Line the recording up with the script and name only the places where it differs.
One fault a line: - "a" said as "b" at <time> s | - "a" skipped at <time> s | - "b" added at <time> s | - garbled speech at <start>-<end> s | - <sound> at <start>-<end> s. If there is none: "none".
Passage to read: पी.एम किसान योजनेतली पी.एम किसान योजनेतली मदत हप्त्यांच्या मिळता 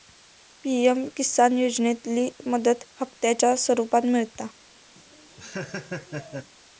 - "पी.एम किसान योजनेतली" skipped at 2.3 s
- "स्वरुपात" added at 3.6 s
- laugh at 5.0-6.5 s